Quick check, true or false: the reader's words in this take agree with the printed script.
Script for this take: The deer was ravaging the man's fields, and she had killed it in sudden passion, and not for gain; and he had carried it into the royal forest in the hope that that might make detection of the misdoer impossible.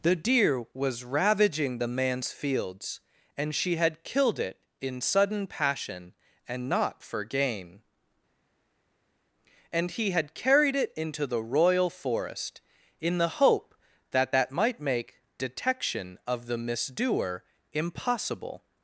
true